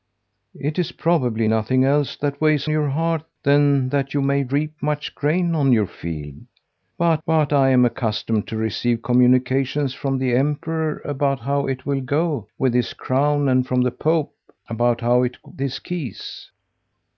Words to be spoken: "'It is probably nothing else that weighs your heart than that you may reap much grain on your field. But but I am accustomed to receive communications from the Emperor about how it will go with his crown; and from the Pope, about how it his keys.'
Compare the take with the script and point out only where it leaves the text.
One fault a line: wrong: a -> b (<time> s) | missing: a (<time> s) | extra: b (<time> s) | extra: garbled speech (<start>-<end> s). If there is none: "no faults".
no faults